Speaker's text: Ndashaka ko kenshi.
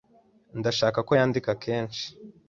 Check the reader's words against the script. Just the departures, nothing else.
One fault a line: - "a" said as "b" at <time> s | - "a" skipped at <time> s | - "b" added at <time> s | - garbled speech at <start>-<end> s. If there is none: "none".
- "yandika" added at 1.2 s